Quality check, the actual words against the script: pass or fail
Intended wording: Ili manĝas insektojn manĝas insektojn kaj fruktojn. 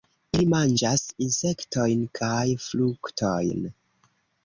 fail